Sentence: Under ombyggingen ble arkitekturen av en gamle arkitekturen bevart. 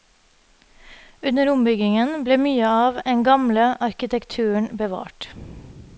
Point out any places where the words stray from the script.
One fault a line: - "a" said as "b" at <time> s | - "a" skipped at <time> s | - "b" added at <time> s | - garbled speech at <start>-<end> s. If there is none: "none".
- "arkitekturen" said as "mye" at 2.5 s